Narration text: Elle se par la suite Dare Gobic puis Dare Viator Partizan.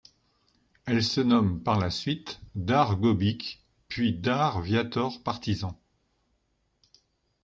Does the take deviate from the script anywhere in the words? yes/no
yes